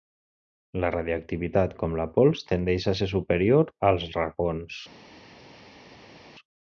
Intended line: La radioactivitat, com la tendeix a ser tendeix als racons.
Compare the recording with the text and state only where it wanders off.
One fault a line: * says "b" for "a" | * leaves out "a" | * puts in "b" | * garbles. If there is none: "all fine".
* puts in "pols"
* says "superior" for "tendeix"